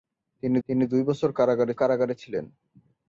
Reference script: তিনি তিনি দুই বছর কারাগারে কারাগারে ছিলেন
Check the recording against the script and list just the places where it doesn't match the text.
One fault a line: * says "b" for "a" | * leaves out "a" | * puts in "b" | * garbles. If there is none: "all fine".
all fine